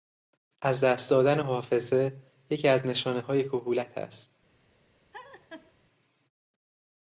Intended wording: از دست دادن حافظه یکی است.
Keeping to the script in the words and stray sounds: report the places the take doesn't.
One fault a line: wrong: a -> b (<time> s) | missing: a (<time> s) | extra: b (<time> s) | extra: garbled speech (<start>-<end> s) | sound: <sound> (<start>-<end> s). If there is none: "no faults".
extra: از نشانههای کهولت (2.7 s)
sound: laugh (5.1-5.7 s)